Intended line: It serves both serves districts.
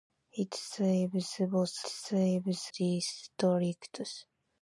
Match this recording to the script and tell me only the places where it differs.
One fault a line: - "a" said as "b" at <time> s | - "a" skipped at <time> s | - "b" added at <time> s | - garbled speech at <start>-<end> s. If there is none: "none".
none